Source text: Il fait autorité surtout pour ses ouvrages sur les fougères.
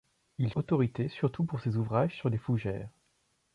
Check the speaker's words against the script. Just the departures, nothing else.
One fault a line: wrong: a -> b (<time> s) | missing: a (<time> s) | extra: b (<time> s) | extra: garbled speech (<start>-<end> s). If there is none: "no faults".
missing: fait (0.5 s)